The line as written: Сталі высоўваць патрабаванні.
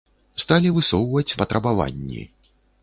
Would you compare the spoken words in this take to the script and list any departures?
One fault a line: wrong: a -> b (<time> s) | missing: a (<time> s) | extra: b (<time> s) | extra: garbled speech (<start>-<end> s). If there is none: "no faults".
no faults